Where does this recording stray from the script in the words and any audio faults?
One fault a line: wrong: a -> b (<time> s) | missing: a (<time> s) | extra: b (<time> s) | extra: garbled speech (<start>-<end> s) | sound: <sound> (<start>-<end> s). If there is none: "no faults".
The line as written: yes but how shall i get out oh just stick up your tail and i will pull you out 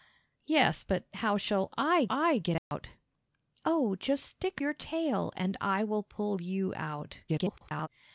extra: i (2.1 s)
sound: dropout (2.6-2.7 s)
missing: up (4.6 s)
extra: garbled speech (7.3-7.9 s)